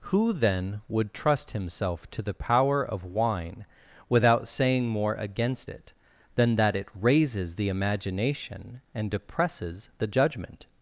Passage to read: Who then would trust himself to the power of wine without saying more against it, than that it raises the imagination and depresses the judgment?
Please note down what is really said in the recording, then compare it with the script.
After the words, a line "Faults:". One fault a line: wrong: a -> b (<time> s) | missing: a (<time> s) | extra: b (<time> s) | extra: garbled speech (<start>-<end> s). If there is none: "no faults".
Who then would trust himself to the power of wine without saying more against it, than that it raises the imagination and depresses the judgment?
Faults:
no faults